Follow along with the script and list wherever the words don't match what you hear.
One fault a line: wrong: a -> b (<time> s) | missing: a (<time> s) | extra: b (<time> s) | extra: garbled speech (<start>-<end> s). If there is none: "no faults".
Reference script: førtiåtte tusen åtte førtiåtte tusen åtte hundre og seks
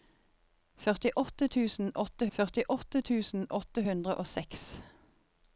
no faults